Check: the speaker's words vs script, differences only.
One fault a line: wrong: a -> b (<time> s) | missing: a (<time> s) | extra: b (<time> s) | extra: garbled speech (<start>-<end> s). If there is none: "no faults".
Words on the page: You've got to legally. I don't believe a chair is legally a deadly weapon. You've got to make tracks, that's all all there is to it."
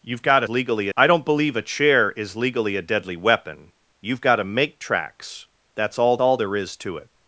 no faults